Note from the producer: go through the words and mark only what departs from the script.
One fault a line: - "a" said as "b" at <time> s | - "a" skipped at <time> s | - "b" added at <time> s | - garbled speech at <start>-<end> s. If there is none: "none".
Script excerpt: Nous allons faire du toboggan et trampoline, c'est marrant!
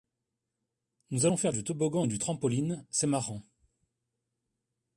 - "du" added at 2.1 s